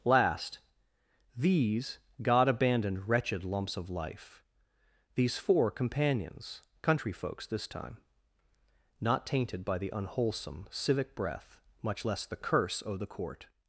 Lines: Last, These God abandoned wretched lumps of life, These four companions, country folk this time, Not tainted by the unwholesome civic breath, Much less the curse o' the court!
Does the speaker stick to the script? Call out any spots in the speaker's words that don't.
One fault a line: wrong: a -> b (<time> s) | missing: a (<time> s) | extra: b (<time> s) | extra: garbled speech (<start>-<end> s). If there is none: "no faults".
wrong: folk -> folks (7.1 s)